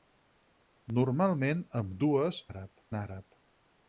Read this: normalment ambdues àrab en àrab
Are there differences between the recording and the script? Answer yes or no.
no